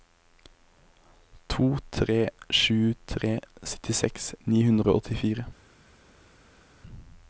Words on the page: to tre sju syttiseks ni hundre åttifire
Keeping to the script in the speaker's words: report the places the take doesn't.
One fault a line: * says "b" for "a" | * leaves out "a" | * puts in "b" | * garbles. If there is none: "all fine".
* puts in "tre"
* puts in "og"